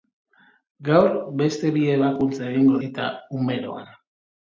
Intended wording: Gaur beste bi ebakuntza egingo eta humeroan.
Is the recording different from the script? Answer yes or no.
no